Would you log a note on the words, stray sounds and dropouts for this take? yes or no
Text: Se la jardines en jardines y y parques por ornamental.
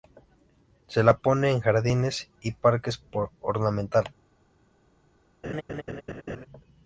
yes